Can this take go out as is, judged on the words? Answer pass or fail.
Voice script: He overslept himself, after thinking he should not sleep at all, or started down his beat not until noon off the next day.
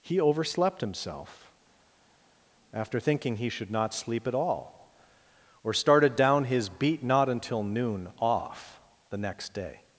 pass